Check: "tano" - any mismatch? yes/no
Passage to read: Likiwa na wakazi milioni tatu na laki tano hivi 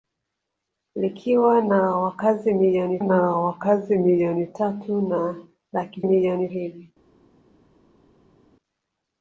yes